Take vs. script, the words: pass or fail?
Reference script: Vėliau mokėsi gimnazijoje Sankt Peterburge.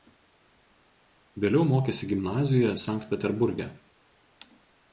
pass